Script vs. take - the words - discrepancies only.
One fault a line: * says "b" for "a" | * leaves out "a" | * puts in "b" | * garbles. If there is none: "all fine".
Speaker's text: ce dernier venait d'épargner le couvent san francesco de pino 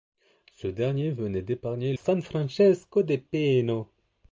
* leaves out "le couvent"